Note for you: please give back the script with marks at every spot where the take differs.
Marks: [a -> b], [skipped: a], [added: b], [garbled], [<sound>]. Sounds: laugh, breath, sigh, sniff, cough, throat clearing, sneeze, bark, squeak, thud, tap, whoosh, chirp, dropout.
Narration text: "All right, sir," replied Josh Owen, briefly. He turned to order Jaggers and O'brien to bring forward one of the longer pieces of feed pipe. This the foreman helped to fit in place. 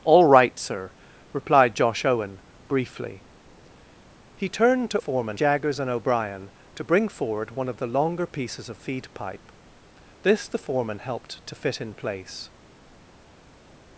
"All right, sir," replied Josh Owen, briefly. He turned to [order -> foreman] Jaggers and O'brien to bring forward one of the longer pieces of feed pipe. This the foreman helped to fit in place.